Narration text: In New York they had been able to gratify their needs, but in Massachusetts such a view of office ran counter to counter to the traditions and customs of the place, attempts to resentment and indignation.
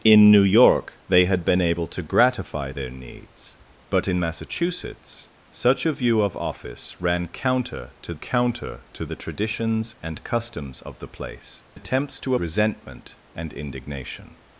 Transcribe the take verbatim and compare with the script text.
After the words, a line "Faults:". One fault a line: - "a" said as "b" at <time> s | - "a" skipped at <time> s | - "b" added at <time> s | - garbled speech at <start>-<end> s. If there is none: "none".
In New York they had been able to gratify their needs, but in Massachusetts such a view of office ran counter to counter to the traditions and customs of the place, attempts to resentment and indignation.
Faults:
none